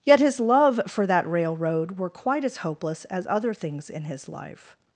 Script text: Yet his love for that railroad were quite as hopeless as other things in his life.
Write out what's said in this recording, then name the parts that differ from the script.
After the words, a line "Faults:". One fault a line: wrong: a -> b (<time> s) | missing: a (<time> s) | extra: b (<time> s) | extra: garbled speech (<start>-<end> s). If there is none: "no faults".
Yet his love for that railroad were quite as hopeless as other things in his life.
Faults:
no faults